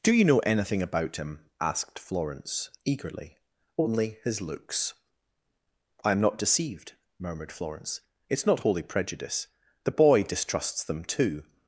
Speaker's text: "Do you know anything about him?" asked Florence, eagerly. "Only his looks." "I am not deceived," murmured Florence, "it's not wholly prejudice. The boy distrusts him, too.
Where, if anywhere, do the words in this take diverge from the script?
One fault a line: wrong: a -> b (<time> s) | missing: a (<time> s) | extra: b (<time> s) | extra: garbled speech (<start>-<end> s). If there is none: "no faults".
wrong: him -> them (10.8 s)